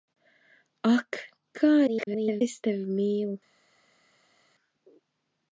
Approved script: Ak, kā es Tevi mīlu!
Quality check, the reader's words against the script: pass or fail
fail